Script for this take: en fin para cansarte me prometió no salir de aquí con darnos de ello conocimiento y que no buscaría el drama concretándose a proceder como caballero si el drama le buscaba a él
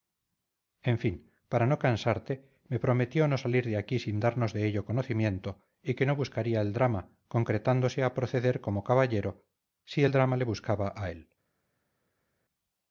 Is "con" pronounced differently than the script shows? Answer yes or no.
yes